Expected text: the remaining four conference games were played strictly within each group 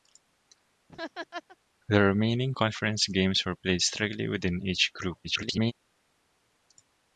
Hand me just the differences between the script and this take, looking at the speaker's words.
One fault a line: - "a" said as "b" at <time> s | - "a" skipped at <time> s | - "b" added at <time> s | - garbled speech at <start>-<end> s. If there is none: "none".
- "four" skipped at 2.5 s
- garbled speech at 5.2-5.7 s